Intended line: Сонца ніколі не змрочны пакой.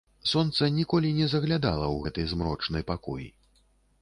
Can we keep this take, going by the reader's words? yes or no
no